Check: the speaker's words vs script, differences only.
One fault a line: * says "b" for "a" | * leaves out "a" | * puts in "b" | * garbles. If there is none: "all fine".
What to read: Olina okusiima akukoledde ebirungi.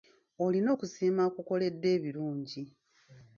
all fine